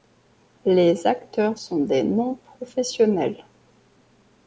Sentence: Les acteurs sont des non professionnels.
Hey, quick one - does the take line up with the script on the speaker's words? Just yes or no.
yes